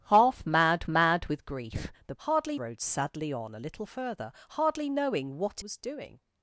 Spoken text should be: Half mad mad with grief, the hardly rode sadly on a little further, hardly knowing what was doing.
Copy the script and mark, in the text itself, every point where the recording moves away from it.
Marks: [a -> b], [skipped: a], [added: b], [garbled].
Half mad mad with grief, the hardly rode sadly on a little further, hardly knowing what was doing.